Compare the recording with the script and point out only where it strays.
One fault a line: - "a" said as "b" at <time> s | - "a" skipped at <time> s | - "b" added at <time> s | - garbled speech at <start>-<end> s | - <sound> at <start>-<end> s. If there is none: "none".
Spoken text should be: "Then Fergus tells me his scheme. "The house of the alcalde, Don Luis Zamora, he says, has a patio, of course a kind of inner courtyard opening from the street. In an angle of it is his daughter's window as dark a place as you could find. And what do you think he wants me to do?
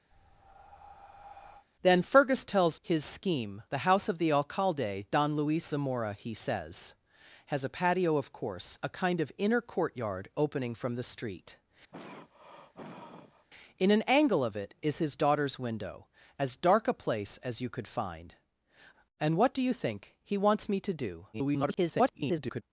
- breath at 0.1-1.7 s
- "me" skipped at 2.8 s
- throat clearing at 11.9-13.5 s
- garbled speech at 21.3-22.6 s